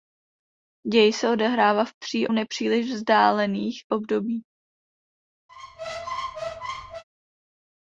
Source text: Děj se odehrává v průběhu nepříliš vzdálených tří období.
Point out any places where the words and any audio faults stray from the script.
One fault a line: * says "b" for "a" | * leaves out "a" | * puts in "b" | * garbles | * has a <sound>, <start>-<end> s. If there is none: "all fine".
* says "tří" for "průběhu"
* leaves out "tří"
* has a squeak, 5.5-7.0 s